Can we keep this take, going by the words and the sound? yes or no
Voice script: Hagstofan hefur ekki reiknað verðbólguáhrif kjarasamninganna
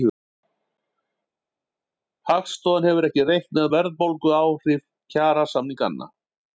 yes